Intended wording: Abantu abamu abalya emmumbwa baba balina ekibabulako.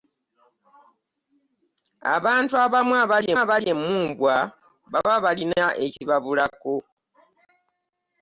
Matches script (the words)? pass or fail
fail